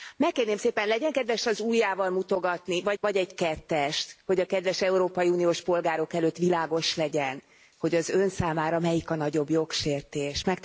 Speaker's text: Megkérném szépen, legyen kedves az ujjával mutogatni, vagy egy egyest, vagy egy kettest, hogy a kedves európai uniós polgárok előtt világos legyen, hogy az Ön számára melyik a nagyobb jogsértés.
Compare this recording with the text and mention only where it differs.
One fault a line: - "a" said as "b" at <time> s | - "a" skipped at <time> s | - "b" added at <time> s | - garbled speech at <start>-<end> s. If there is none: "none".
- "egy egyest" skipped at 3.0 s